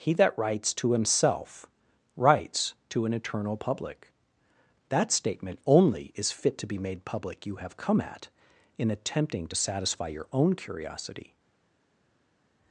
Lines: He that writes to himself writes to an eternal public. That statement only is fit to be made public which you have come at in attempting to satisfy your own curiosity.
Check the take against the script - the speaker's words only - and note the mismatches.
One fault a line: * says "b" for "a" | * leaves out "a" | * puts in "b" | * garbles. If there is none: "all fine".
* leaves out "which"